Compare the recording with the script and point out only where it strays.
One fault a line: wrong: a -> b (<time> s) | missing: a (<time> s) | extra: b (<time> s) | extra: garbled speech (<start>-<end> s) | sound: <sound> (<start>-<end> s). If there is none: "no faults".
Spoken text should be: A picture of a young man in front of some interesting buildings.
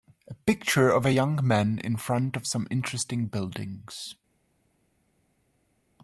no faults